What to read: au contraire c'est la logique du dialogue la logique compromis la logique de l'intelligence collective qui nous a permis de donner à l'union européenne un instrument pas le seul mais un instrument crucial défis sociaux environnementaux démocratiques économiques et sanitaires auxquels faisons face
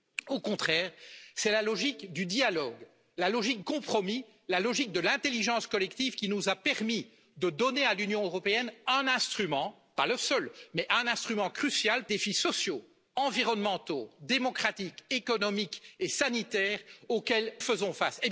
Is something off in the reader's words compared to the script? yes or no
no